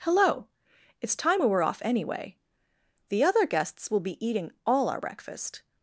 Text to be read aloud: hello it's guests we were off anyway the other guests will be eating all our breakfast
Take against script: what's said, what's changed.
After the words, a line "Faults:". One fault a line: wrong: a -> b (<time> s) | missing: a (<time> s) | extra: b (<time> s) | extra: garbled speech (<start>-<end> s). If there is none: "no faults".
hello it's time we were off anyway the other guests will be eating all our breakfast
Faults:
wrong: guests -> time (1.1 s)